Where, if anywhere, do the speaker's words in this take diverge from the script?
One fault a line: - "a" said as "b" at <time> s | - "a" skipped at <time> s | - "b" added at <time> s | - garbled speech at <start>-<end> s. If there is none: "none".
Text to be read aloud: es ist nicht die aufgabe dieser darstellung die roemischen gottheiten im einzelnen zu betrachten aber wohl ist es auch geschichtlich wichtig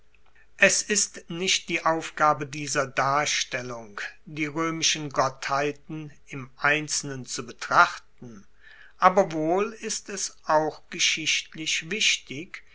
none